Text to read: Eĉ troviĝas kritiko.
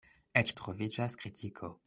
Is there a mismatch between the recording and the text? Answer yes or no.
no